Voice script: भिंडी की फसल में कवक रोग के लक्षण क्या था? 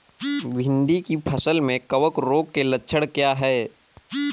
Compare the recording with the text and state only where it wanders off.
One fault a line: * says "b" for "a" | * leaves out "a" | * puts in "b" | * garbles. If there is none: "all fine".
* says "है" for "था"